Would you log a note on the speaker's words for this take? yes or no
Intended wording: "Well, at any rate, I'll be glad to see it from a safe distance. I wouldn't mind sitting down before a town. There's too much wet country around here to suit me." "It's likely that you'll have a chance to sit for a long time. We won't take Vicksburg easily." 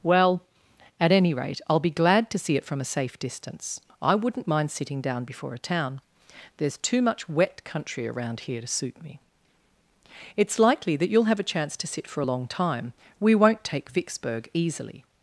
no